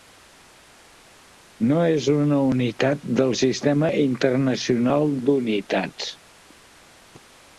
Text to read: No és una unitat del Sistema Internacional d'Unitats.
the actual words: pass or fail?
pass